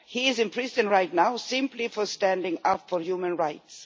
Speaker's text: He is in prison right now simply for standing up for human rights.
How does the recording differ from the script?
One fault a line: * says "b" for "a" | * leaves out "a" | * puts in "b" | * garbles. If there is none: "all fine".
all fine